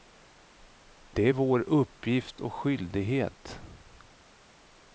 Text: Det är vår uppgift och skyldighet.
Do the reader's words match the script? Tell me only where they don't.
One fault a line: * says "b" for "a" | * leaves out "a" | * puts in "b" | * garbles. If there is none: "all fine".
all fine